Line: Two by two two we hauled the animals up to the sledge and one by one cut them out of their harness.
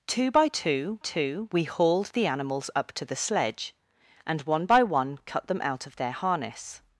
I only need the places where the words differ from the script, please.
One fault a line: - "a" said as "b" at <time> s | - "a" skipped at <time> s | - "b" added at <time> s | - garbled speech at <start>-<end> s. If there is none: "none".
none